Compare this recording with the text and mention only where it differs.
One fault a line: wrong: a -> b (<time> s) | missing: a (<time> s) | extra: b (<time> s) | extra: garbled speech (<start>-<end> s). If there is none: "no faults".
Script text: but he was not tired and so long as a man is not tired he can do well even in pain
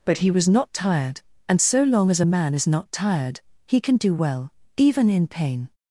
no faults